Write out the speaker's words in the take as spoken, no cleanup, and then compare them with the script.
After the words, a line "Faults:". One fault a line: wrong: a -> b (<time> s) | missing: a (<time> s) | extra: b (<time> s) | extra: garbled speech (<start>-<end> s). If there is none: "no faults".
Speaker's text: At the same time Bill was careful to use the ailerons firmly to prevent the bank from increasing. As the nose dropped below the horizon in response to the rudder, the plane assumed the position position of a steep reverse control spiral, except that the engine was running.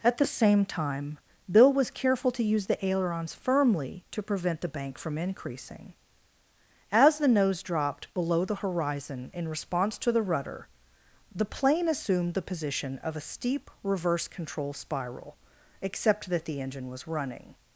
At the same time Bill was careful to use the ailerons firmly to prevent the bank from increasing. As the nose dropped below the horizon in response to the rudder, the plane assumed the position of a steep reverse control spiral, except that the engine was running.
Faults:
missing: position (13.0 s)